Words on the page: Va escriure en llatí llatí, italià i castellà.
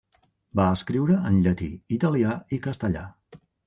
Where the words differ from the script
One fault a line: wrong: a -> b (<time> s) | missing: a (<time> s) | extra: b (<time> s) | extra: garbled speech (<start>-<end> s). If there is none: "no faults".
missing: llatí (1.7 s)